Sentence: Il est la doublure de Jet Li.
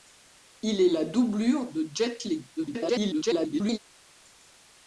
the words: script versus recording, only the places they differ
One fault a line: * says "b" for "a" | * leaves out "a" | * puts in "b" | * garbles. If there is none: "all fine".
* garbles